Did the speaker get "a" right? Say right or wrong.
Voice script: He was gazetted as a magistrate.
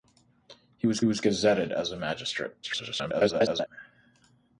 right